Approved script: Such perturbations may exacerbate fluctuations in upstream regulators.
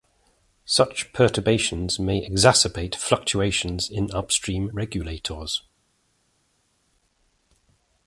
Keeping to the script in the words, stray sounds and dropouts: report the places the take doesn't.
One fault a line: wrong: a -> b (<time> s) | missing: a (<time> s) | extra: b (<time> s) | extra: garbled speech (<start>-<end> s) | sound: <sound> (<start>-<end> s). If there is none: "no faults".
no faults